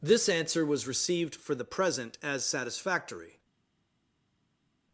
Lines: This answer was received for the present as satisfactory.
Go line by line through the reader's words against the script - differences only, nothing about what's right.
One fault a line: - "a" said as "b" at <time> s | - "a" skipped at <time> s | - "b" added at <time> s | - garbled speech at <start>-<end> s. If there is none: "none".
none